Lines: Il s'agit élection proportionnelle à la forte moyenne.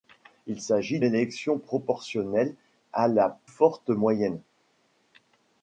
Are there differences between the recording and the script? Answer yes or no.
no